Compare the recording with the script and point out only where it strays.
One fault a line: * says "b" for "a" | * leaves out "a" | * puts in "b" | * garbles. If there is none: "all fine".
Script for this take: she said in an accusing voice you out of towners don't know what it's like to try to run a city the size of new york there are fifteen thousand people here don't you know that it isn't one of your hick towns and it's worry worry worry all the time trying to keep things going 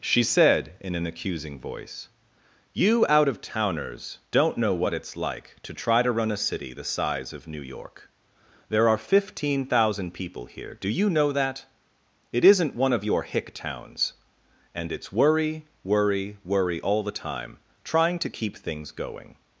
* says "do" for "don't"